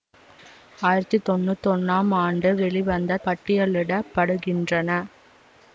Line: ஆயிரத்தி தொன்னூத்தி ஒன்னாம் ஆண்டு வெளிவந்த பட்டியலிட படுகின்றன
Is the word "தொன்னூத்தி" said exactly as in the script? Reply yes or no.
yes